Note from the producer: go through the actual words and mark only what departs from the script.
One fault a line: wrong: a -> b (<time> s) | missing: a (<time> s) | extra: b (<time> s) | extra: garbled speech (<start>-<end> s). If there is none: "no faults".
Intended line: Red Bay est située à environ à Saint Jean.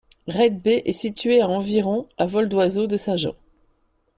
extra: vol d'oiseau de (2.2 s)